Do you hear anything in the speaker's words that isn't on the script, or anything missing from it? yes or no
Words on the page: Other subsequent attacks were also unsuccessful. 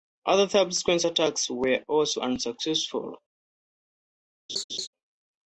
no